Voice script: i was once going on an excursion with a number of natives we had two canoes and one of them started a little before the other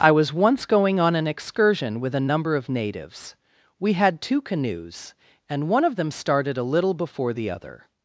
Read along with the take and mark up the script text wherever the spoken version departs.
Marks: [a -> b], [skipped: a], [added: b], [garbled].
i was once going on an excursion with a number of natives we had two canoes and one of them started a little before the other